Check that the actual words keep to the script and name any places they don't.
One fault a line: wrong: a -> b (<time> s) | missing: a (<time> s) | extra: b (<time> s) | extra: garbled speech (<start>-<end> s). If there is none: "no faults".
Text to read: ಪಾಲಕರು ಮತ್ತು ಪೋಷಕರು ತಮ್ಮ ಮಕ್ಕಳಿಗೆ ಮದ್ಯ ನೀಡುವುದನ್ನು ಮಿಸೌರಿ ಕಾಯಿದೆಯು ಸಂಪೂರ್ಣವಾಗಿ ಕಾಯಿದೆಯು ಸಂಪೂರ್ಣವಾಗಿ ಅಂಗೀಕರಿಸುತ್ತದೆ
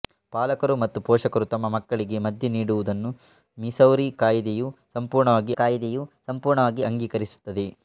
no faults